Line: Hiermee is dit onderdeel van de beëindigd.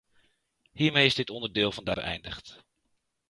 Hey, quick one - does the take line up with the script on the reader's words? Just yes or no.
yes